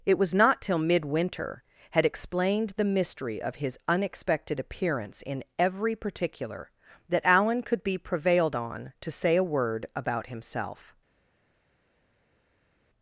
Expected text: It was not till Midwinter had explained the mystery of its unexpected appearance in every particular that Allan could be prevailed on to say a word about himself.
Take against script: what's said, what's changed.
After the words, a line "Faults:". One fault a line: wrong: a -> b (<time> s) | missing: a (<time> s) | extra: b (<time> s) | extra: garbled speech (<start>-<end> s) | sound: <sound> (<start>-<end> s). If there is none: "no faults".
It was not till Midwinter had explained the mystery of his unexpected appearance in every particular that Allan could be prevailed on to say a word about himself.
Faults:
wrong: its -> his (3.5 s)